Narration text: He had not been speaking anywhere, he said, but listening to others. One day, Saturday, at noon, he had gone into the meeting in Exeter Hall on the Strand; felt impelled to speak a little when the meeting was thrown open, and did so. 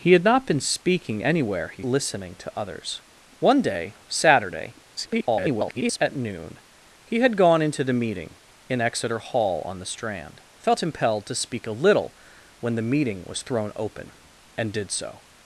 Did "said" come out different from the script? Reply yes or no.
yes